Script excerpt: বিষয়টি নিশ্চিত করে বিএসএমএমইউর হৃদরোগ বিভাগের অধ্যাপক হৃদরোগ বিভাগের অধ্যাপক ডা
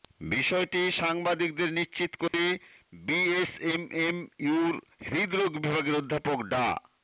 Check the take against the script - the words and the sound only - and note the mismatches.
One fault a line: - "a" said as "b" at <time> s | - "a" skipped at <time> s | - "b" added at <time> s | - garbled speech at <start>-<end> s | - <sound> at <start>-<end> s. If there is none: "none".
- "সাংবাদিকদের" added at 1.0 s
- dropout at 2.3-2.3 s
- "হৃদরোগ বিভাগের অধ্যাপক" skipped at 6.4 s